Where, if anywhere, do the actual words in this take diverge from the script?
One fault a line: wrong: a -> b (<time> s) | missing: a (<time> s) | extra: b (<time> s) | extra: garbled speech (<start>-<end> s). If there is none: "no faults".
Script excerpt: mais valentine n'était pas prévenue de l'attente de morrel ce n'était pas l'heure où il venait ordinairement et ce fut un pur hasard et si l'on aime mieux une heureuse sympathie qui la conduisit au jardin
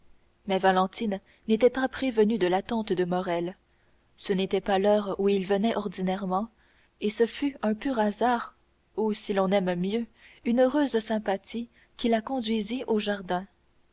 wrong: et -> ou (9.0 s)